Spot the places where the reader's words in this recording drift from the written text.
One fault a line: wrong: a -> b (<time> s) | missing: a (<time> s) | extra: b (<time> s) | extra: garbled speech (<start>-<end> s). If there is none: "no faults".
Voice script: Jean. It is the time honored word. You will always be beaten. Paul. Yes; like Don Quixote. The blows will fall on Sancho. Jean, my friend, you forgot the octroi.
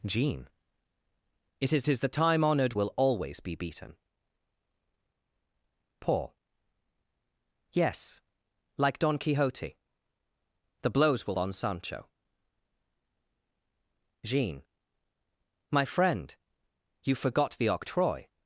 extra: is (1.9 s)
missing: word You (2.8 s)
missing: fall (11.3 s)